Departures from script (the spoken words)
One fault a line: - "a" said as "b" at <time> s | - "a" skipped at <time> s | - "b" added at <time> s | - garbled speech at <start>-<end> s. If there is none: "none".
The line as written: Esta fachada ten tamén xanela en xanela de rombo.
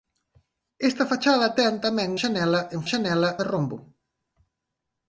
none